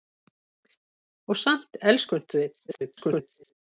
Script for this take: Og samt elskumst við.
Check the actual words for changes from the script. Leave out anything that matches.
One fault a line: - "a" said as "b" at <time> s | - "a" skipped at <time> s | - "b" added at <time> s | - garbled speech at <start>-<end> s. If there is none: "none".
- garbled speech at 2.7-3.5 s